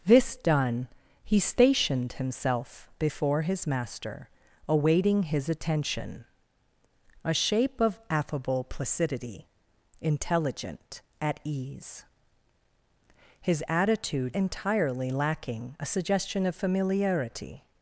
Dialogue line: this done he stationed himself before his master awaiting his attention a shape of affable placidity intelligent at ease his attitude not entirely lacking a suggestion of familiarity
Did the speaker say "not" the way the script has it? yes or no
no